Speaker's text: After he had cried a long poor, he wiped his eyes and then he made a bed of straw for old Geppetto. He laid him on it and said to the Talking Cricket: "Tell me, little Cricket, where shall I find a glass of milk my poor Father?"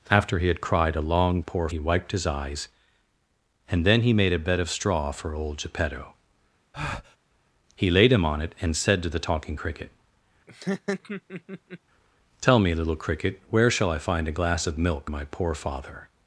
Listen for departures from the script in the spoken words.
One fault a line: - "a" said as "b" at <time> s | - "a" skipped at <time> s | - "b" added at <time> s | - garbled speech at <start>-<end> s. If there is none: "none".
none